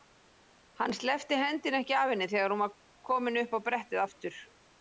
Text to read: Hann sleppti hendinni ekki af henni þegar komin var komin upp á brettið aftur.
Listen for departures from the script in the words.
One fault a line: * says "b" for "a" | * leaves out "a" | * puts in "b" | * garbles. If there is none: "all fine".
* says "hún" for "komin"